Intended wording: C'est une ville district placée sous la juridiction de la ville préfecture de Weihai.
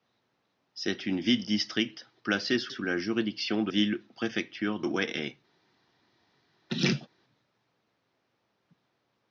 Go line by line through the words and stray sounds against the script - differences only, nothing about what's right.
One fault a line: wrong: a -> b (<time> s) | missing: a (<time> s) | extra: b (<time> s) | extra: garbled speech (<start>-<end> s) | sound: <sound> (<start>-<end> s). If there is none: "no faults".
extra: sous (2.7 s)
missing: la (3.7 s)
missing: de (4.8 s)
sound: laugh (6.7-7.1 s)